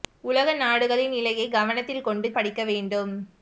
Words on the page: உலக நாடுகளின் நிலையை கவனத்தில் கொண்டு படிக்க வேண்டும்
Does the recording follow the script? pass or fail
pass